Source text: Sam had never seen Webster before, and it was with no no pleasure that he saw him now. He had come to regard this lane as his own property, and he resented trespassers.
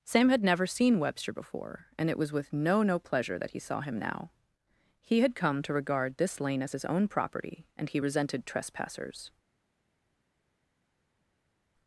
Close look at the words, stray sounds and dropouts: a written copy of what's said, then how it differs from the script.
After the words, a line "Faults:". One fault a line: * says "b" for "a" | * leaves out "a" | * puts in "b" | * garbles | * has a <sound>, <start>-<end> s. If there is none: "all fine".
Sam had never seen Webster before, and it was with no no pleasure that he saw him now. He had come to regard this lane as his own property, and he resented trespassers.
Faults:
all fine